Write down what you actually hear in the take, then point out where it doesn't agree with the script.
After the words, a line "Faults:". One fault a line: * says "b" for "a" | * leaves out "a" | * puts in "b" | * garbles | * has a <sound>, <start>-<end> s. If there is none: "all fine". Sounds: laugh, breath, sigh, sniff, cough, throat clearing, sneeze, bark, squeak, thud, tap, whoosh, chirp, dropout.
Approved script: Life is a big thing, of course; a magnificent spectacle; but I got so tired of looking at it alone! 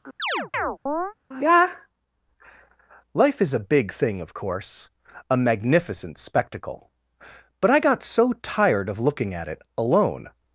yeah Life is a big thing, of course; a magnificent spectacle; but I got so tired of looking at it alone!
Faults:
* has a chirp, 0.2-1.1 s
* puts in "yeah"